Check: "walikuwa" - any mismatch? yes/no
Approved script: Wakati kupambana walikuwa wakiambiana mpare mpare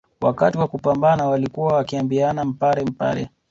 no